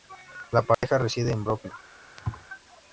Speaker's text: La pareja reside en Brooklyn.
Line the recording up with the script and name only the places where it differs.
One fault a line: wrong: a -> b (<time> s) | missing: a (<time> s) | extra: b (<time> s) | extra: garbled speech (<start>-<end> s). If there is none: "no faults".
no faults